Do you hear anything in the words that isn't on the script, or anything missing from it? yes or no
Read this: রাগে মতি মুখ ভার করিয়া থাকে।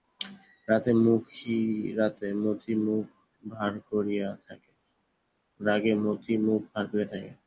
no